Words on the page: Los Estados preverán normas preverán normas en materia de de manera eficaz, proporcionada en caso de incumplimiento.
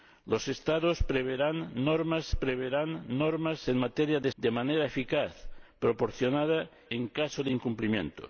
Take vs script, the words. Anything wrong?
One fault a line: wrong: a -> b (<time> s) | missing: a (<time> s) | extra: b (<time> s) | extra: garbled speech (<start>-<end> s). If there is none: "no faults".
no faults